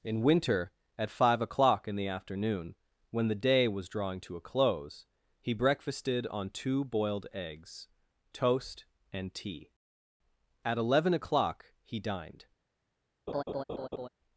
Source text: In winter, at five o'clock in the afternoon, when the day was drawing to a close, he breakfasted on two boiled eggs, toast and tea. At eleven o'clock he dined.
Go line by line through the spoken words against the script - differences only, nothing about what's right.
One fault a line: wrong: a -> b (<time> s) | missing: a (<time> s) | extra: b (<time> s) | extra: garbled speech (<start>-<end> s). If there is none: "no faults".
no faults